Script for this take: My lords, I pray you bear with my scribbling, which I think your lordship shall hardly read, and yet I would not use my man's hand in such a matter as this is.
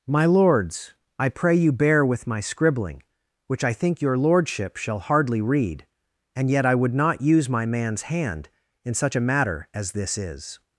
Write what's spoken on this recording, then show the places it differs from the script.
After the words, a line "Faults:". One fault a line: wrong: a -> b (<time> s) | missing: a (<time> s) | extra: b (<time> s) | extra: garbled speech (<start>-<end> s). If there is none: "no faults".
My lords, I pray you bear with my scribbling, which I think your lordship shall hardly read, and yet I would not use my man's hand in such a matter as this is.
Faults:
no faults